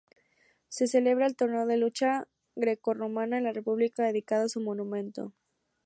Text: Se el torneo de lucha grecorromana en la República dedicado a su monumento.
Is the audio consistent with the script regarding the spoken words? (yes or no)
no